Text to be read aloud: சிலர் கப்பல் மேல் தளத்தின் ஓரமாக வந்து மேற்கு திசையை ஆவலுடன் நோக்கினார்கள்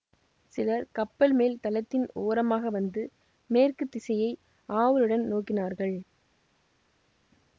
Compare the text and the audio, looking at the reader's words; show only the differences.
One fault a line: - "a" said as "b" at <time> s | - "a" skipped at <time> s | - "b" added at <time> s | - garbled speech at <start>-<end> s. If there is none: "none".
none